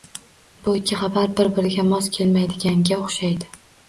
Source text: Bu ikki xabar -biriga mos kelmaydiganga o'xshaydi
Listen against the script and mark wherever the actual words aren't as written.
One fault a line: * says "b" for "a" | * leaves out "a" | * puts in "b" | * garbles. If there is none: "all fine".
* puts in "bir"